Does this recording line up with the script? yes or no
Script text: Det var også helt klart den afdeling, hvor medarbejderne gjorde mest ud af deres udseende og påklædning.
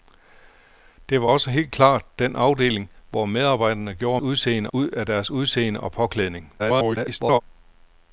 no